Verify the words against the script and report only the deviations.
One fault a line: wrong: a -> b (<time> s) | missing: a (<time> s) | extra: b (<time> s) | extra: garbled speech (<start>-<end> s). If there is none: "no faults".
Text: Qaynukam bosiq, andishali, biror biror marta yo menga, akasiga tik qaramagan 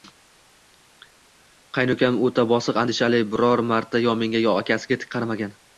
extra: o`ta (2.3 s)
missing: biror (3.7 s)
extra: yo (4.5 s)